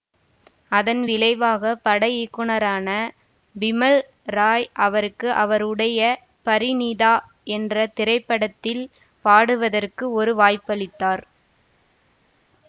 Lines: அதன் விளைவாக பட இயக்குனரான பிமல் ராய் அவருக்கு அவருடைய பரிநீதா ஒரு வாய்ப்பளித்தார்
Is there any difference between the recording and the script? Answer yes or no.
yes